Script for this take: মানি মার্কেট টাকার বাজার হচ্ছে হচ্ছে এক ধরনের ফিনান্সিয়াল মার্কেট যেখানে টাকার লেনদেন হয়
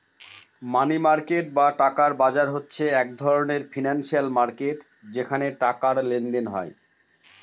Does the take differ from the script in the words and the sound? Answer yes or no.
yes